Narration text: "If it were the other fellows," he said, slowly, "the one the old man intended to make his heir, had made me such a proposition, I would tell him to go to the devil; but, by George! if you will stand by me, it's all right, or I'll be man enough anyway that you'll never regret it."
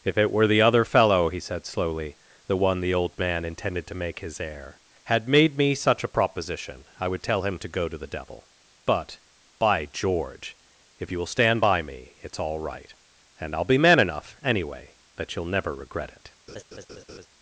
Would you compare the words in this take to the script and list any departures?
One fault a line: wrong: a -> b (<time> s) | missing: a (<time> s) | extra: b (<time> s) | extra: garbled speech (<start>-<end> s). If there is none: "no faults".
wrong: fellows -> fellow (0.8 s)
wrong: or -> and (13.4 s)